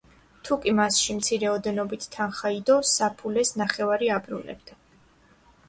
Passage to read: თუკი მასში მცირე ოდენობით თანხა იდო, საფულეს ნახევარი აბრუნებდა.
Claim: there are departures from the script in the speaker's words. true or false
false